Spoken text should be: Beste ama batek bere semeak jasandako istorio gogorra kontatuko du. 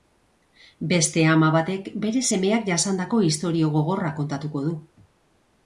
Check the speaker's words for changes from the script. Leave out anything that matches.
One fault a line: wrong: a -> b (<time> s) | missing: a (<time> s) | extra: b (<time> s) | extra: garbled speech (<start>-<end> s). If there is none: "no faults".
no faults